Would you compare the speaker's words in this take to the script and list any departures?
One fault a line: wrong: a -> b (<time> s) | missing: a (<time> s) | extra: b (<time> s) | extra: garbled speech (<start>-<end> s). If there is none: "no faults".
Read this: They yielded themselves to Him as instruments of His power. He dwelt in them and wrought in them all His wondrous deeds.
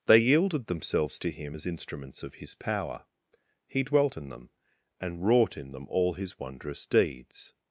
no faults